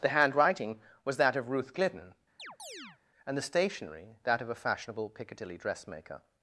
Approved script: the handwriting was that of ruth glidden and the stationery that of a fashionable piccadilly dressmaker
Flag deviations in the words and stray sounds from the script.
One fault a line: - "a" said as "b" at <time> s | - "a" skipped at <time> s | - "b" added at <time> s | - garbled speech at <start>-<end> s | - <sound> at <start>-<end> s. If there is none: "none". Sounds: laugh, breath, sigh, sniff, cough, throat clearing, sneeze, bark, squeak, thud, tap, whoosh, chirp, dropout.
- chirp at 2.4-3.0 s